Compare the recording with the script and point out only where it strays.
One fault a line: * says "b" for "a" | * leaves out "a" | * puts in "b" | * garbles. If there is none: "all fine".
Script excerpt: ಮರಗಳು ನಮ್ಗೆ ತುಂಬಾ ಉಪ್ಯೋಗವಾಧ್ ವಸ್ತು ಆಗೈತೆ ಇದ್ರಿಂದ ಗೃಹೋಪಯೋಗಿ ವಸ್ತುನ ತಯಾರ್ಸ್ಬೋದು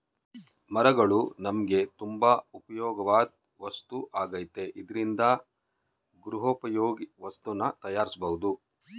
all fine